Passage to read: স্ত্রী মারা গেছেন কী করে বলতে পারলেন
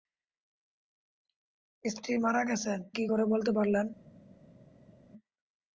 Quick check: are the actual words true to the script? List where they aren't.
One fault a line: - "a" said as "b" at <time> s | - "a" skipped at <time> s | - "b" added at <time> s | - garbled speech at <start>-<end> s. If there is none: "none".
none